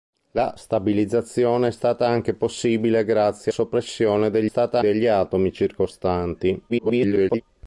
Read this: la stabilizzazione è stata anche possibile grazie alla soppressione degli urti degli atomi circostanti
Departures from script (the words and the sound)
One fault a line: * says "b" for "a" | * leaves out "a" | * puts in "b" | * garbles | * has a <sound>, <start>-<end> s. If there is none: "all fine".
* leaves out "alla"
* says "stata" for "urti"
* garbles